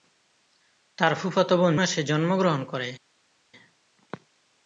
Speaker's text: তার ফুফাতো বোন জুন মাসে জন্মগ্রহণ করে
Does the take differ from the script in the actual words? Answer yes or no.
yes